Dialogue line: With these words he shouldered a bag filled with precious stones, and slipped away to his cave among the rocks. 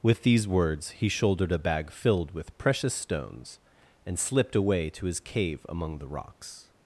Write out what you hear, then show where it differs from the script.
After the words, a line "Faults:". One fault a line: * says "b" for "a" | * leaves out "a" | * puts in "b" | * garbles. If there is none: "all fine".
With these words he shouldered a bag filled with precious stones, and slipped away to his cave among the rocks.
Faults:
all fine